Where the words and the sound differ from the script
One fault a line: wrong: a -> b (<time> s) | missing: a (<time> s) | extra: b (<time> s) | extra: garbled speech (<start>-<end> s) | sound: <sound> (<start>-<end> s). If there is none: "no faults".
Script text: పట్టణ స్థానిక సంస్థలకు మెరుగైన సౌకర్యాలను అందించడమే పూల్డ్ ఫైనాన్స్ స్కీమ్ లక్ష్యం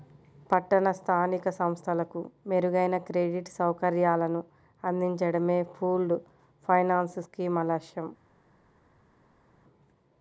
extra: క్రెడిట్ (3.1 s)